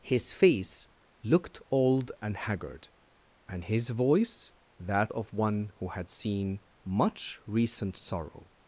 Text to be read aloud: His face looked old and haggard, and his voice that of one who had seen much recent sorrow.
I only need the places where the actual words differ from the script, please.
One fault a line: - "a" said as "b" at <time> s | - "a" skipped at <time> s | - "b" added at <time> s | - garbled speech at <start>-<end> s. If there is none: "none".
none